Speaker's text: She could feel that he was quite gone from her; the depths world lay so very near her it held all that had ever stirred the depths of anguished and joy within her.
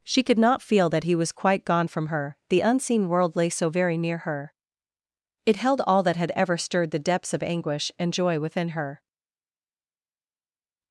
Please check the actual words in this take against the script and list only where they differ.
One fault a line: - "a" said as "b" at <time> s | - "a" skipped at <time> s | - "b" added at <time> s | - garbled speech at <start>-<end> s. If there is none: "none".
- "not" added at 0.4 s
- "depths" said as "unseen" at 2.6 s
- "anguished" said as "anguish" at 7.4 s